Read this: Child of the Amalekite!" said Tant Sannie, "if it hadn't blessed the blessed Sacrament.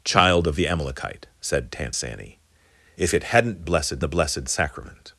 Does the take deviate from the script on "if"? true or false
false